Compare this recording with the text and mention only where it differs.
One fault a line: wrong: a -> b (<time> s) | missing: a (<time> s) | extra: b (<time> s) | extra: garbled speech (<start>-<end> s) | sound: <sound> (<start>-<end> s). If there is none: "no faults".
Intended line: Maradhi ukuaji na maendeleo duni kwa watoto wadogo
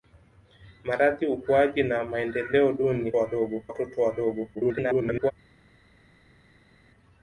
wrong: kwa -> wadogo (3.2 s)
extra: garbled speech (4.5-5.3 s)